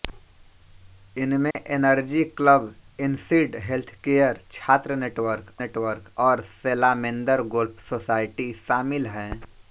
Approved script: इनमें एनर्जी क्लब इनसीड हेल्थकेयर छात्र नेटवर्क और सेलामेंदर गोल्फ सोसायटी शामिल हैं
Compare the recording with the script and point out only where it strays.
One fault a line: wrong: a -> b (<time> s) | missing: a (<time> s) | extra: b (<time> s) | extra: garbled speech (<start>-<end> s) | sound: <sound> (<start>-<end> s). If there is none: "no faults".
sound: dropout (1.5-1.6 s)
extra: नेटवर्क (5.6 s)